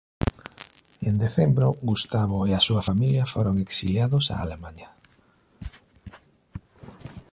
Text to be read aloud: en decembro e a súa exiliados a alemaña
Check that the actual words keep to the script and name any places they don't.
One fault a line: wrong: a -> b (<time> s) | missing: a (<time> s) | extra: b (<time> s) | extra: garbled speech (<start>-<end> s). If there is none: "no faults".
extra: gustavo (1.9 s)
extra: familia foron (2.9 s)